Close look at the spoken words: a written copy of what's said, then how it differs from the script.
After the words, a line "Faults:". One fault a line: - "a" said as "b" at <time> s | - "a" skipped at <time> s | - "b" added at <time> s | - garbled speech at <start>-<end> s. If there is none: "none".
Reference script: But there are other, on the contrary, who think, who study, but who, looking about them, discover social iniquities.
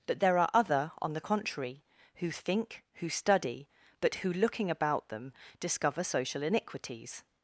But there are other, on the contrary, who think, who study, but who, looking about them, discover social iniquities.
Faults:
none